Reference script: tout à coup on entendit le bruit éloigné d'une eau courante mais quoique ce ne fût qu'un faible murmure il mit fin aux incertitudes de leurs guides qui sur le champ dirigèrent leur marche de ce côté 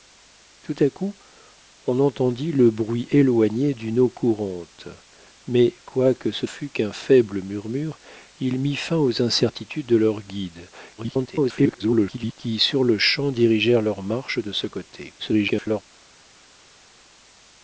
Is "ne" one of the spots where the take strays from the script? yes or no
yes